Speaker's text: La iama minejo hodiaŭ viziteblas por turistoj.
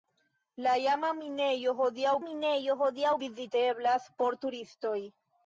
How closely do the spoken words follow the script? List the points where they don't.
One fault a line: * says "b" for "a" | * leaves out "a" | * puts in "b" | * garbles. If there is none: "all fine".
* puts in "minejo hodiaŭ"